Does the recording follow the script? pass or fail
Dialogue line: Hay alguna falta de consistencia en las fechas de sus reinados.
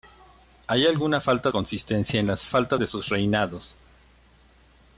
fail